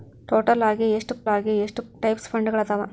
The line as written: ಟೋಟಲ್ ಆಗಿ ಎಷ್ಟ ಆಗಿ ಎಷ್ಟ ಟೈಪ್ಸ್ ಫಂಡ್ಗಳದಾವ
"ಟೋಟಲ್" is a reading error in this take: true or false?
false